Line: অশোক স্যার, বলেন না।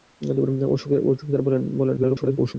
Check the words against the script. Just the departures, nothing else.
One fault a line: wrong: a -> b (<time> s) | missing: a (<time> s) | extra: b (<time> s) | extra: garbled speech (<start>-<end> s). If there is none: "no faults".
extra: garbled speech (2.0-2.5 s)